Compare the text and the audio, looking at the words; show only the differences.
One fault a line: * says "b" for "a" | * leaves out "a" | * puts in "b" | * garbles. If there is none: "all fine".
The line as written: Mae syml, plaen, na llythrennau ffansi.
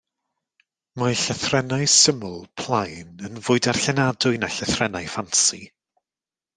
* puts in "llythrennau"
* puts in "yn fwy darllenadwy"